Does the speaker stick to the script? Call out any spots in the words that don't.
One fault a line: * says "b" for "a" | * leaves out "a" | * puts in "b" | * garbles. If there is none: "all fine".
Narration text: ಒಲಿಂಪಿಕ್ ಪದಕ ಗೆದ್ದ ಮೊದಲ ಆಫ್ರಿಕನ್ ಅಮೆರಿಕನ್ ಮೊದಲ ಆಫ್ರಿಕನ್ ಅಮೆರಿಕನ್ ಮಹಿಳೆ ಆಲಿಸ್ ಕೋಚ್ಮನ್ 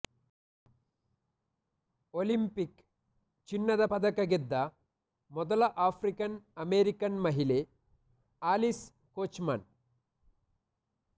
* puts in "ಚಿನ್ನದ"
* leaves out "ಮೊದಲ ಆಫ್ರಿಕನ್ ಅಮೆರಿಕನ್"